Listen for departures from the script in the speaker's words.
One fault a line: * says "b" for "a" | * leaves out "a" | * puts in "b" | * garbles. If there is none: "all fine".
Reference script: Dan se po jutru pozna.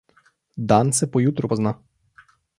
all fine